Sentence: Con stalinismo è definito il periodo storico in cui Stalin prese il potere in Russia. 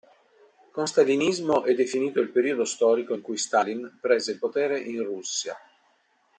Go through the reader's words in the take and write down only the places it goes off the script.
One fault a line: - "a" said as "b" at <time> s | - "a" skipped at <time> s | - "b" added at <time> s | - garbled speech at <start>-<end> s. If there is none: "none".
none